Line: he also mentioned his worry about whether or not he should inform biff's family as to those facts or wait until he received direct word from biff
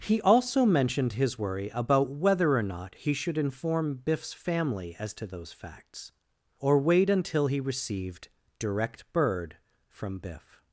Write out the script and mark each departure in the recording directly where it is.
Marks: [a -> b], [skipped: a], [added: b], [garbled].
he also mentioned his worry about whether or not he should inform biff's family as to those facts or wait until he received direct [word -> bird] from biff